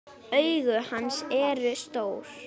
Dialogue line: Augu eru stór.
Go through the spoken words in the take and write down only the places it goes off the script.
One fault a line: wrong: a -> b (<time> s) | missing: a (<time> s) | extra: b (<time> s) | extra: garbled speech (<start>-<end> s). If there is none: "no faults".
extra: hans (0.9 s)